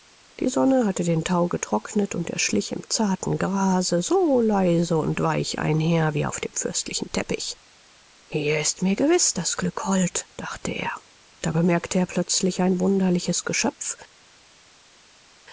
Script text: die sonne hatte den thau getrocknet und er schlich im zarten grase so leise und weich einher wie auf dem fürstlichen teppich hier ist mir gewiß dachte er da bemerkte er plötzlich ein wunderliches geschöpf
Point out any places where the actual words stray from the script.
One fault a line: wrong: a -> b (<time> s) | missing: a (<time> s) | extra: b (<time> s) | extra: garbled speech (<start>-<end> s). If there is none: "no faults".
extra: das glück hold (9.3 s)